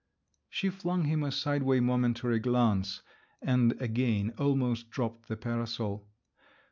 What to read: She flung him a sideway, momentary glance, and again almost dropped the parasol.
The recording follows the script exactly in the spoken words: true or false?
true